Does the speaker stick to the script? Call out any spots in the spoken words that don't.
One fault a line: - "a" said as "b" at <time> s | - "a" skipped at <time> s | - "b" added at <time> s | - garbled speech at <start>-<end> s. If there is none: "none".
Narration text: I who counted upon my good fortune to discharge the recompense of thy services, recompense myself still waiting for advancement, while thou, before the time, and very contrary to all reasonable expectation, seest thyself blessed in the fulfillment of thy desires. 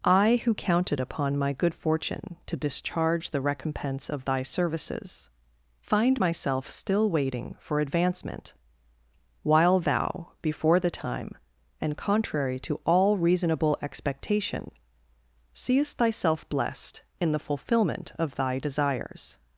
- "recompense" said as "find" at 5.8 s
- "very" skipped at 12.0 s